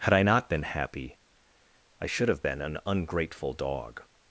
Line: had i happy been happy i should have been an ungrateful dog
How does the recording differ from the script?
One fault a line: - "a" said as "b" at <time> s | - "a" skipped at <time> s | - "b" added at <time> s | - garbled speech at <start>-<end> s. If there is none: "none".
- "happy" said as "not" at 0.2 s